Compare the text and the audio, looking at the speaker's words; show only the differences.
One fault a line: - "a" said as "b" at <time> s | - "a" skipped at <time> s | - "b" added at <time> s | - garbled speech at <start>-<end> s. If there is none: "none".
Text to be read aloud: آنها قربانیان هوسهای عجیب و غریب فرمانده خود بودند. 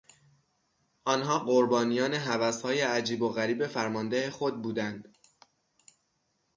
none